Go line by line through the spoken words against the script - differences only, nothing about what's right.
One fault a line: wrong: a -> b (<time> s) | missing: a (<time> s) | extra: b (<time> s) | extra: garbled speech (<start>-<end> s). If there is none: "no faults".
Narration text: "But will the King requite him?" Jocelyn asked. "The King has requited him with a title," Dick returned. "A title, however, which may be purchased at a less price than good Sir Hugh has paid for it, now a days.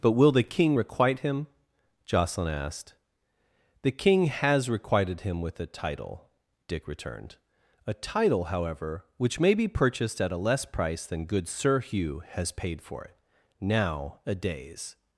no faults